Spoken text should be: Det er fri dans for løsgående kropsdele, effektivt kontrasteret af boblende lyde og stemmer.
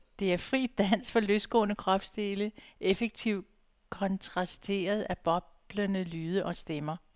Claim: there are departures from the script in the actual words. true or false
false